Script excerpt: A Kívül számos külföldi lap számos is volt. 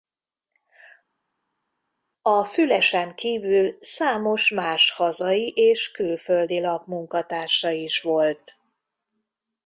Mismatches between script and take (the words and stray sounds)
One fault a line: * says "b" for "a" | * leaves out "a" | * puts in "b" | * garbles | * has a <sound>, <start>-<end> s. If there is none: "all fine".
* puts in "Fülesen"
* puts in "más hazai és"
* says "munkatársa" for "számos"